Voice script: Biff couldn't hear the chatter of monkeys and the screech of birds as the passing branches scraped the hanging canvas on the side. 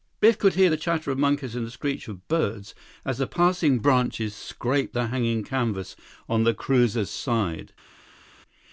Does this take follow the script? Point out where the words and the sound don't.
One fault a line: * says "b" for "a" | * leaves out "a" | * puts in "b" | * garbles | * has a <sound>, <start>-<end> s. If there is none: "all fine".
* says "could" for "couldn't"
* puts in "cruiser's"